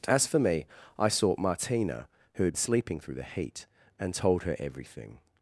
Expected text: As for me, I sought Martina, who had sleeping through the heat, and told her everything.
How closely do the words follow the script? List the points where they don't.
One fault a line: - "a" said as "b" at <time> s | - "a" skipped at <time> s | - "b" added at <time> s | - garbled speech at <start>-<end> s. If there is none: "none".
none